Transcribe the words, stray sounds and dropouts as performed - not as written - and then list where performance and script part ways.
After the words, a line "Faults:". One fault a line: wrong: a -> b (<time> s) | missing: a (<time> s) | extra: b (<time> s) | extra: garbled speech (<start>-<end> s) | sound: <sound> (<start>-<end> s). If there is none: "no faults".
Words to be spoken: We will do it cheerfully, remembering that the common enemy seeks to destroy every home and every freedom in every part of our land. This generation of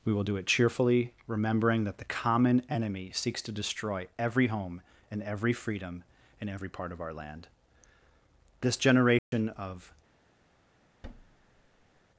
We will do it cheerfully, remembering that the common enemy seeks to destroy every home and every freedom in every part of our land. This generation of
Faults:
sound: dropout (9.2-9.3 s)
sound: thud (11.0-12.0 s)